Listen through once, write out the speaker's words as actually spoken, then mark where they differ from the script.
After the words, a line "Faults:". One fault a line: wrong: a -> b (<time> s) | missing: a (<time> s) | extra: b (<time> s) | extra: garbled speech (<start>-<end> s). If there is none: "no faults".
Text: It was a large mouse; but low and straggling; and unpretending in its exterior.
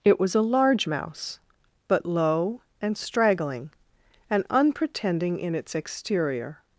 It was a large mouse; but low and straggling; and unpretending in its exterior.
Faults:
no faults